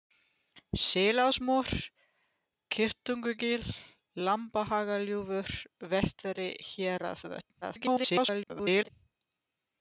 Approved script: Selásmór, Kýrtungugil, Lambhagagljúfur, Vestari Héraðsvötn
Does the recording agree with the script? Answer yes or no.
no